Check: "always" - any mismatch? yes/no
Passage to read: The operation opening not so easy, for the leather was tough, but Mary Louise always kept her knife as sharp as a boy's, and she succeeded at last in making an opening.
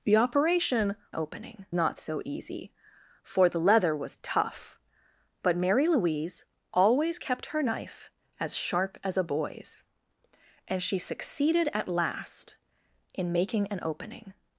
no